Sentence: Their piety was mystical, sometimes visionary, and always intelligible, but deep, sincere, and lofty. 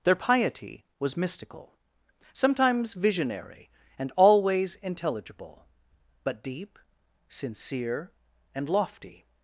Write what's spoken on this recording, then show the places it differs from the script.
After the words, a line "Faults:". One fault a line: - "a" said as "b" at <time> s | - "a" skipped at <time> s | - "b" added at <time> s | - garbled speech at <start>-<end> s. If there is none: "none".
Their piety was mystical, sometimes visionary, and always intelligible, but deep, sincere, and lofty.
Faults:
none